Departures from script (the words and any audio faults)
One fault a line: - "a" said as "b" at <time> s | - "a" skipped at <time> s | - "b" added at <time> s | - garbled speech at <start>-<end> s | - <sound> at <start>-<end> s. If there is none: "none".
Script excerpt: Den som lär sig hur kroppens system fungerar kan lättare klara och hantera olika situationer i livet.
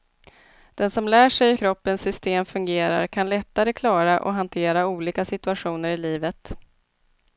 - "hur" skipped at 1.5 s